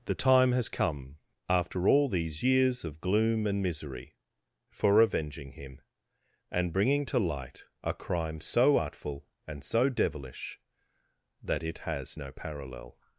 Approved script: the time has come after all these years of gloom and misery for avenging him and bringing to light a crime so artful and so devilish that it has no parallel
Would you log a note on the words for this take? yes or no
no